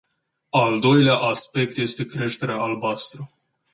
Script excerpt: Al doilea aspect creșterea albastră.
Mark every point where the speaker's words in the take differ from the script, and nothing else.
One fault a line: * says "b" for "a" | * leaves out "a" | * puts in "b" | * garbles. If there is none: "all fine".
* puts in "este"